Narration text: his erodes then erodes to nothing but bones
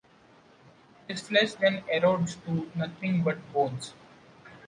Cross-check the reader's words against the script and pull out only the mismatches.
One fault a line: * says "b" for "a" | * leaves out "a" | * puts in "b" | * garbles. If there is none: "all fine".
* says "flesh" for "erodes"